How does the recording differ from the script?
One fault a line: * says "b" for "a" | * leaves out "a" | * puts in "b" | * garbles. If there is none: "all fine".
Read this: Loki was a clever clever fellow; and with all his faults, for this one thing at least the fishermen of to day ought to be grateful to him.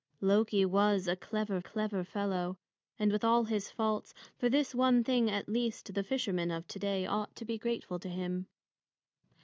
all fine